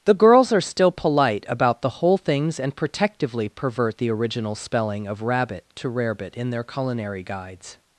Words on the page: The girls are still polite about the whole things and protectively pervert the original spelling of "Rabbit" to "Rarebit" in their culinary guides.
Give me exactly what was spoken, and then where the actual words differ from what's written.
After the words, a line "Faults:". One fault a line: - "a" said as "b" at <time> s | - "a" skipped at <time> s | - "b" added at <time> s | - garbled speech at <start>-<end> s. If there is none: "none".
The girls are still polite about the whole things and protectively pervert the original spelling of "Rabbit" to "Rarebit" in their culinary guides.
Faults:
none